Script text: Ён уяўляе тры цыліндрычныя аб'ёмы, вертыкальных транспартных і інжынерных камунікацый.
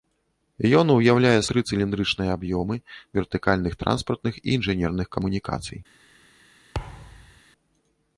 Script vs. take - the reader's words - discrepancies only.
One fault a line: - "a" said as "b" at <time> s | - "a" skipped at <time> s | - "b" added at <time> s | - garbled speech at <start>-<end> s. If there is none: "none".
none